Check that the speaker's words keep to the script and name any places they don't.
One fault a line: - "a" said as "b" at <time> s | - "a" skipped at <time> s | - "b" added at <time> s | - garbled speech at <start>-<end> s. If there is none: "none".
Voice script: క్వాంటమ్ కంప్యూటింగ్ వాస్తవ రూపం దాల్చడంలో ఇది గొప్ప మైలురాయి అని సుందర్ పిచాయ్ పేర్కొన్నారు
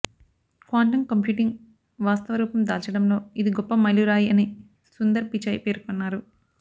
none